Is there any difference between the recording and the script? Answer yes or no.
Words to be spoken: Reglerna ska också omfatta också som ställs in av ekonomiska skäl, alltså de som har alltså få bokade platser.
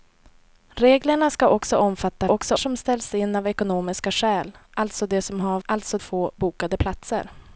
no